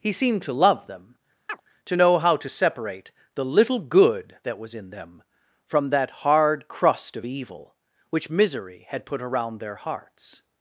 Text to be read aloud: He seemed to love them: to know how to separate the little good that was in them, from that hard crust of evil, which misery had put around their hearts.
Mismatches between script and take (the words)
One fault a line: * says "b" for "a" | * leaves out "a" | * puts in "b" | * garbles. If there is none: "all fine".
all fine